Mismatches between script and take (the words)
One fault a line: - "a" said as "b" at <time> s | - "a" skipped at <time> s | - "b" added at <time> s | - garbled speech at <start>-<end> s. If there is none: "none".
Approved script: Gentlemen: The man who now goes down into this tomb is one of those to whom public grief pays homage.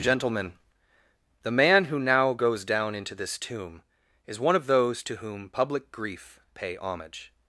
- "pays" said as "pay" at 6.5 s